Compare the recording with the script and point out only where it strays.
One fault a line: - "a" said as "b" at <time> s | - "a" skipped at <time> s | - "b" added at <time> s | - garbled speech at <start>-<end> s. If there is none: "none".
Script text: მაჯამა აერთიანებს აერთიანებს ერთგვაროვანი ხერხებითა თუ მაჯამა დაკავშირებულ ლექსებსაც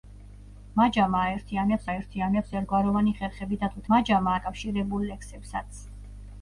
none